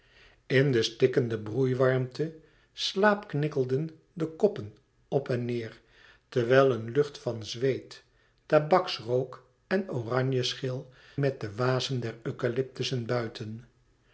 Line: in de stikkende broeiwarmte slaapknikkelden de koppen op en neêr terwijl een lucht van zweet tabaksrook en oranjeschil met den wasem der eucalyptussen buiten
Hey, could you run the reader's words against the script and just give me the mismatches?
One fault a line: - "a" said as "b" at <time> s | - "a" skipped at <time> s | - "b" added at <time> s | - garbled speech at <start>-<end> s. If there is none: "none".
none